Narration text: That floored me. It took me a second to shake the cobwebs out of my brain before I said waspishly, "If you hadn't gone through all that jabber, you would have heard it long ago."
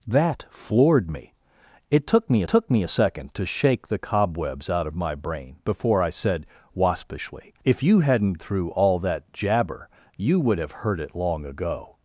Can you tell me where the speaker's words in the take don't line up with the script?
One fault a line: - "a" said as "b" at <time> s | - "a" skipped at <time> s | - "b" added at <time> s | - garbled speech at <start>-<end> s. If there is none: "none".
- "took me" added at 2.5 s
- "gone" skipped at 8.4 s